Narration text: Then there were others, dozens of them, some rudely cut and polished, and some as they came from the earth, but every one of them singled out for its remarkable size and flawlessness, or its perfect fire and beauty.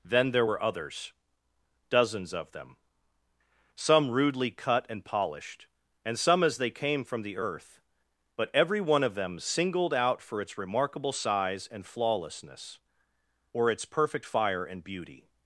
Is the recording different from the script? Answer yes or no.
no